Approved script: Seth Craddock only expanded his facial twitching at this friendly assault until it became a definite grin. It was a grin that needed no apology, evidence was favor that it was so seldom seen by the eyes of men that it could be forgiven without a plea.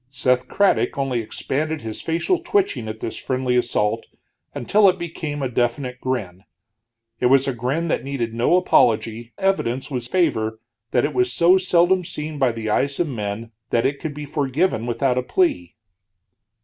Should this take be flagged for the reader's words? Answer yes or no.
no